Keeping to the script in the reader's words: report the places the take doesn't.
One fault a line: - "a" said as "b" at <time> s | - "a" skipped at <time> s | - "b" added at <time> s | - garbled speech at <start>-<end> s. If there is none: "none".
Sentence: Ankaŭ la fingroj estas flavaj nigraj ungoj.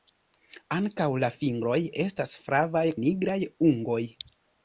none